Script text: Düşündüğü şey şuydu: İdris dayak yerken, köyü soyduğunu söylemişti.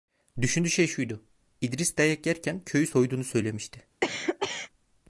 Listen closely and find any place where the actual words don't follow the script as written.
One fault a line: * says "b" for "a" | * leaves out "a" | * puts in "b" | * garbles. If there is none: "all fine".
all fine